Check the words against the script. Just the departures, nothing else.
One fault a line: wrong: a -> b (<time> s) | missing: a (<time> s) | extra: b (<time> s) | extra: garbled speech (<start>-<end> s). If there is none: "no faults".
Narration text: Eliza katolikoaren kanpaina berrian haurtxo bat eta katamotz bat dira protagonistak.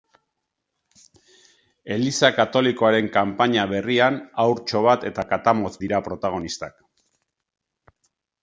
missing: bat (5.8 s)